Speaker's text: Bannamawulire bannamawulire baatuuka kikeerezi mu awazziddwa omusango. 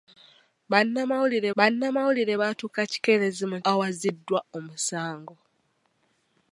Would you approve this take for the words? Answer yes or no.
yes